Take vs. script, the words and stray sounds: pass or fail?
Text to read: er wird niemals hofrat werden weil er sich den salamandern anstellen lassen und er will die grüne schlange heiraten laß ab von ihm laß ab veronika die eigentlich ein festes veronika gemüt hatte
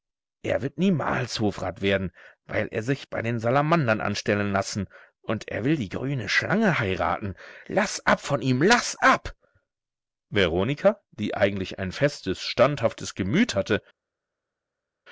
fail